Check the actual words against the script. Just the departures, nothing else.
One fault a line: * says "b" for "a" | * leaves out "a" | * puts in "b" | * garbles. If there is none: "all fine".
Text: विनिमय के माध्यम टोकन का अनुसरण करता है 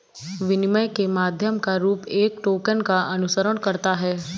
* puts in "का रूप एक"